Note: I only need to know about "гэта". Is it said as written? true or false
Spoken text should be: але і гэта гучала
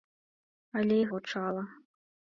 false